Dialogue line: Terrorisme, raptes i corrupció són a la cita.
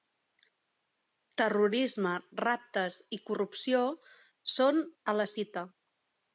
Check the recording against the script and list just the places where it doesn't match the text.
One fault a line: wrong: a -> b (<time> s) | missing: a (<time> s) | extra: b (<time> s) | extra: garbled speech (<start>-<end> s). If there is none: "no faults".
no faults